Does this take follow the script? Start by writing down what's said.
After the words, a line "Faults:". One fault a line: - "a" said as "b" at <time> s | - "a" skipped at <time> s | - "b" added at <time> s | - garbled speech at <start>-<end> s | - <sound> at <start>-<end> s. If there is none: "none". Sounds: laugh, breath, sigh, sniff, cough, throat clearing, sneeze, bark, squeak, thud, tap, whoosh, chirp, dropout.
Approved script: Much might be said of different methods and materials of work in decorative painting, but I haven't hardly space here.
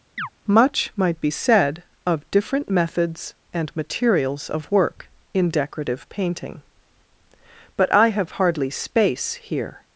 Much might be said of different methods and materials of work in decorative painting, but I have hardly space here.
Faults:
- chirp at 0.2-0.3 s
- "haven't" said as "have" at 8.1 s